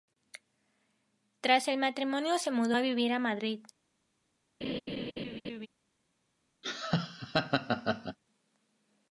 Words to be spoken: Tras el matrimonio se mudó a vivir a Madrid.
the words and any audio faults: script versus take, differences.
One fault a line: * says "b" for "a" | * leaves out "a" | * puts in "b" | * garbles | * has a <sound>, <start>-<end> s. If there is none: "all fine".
* has a laugh, 4.6-5.7 s
* has a laugh, 6.6-8.2 s